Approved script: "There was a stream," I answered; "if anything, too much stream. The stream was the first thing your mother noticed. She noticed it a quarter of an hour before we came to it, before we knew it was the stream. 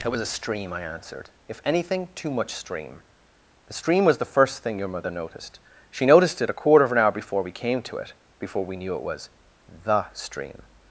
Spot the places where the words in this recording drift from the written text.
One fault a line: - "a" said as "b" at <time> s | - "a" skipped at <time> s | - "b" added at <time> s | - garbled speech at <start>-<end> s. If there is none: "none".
- "There" said as "It" at 0.0 s